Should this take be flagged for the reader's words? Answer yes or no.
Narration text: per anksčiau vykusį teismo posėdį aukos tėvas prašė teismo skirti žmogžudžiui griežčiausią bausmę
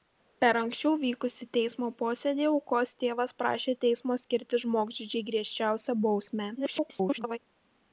yes